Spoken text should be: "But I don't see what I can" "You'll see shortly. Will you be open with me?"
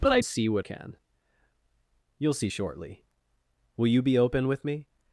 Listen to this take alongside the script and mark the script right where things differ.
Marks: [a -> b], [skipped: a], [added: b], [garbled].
"But I [skipped: don't] see what [skipped: I] can" "You'll see shortly. Will you be open with me?"